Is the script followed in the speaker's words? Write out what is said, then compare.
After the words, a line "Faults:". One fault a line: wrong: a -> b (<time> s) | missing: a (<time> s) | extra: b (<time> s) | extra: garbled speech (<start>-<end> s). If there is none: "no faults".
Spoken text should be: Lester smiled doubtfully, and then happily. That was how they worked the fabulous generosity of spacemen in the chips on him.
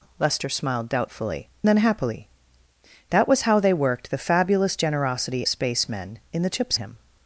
Lester smiled doubtfully, then happily. That was how they worked the fabulous generosity spacemen in the chips him.
Faults:
missing: and (1.5 s)
missing: of (5.5 s)
missing: on (6.8 s)